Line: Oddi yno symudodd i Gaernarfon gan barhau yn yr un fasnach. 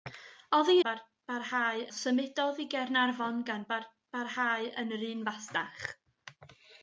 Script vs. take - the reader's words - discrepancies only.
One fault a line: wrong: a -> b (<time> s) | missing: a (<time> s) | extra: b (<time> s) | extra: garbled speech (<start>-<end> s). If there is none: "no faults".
wrong: yno -> barhau (0.9 s)